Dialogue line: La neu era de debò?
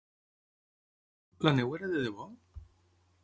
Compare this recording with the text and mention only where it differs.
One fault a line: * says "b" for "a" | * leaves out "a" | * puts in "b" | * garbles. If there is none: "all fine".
all fine